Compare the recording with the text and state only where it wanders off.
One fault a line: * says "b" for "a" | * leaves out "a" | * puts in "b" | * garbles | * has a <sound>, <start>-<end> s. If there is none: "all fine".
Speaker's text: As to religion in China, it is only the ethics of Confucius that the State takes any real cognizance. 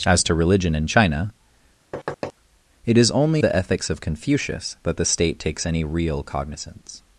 * has a thud, 1.9-2.3 s